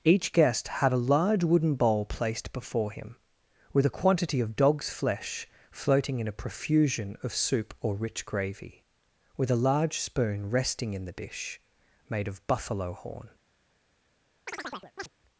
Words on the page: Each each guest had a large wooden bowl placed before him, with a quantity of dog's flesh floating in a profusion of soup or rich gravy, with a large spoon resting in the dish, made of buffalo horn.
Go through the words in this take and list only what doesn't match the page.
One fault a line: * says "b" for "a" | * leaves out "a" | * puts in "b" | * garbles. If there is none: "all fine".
* leaves out "each"